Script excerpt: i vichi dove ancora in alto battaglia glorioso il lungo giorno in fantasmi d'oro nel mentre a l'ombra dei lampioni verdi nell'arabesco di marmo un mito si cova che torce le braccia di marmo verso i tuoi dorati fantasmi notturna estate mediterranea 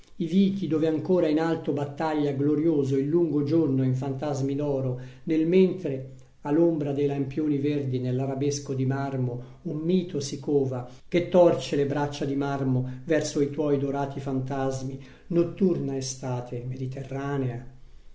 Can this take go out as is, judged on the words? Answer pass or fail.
pass